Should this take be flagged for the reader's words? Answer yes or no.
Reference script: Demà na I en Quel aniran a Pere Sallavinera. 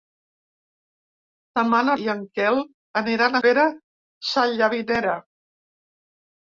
no